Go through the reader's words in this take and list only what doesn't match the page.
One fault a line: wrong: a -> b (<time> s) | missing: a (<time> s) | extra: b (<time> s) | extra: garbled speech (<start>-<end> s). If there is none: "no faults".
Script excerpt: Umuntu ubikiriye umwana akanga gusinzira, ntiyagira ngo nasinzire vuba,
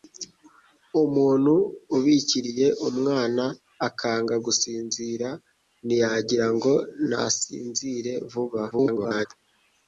extra: garbled speech (8.7-9.3 s)